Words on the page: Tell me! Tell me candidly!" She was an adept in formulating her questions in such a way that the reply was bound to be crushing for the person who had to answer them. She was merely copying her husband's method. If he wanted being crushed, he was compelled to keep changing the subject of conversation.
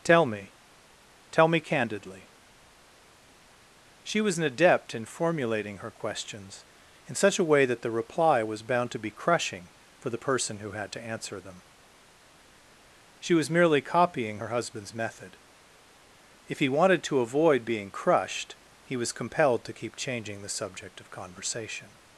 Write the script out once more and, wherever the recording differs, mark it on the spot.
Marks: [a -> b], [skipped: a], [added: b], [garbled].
Tell me! Tell me candidly!" She was an adept in formulating her questions in such a way that the reply was bound to be crushing for the person who had to answer them. She was merely copying her husband's method. If he wanted [added: to avoid] being crushed, he was compelled to keep changing the subject of conversation.